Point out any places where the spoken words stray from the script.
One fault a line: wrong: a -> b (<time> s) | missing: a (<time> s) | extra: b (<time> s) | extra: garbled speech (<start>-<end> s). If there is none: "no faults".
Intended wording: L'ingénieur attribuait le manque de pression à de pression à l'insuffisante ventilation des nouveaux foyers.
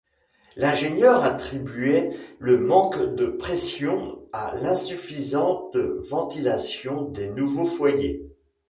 missing: de pression à (4.5 s)